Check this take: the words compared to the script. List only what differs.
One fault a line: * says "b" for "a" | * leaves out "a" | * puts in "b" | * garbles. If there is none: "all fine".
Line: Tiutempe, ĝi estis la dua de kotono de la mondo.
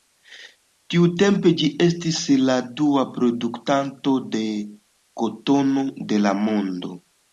* puts in "produktanto"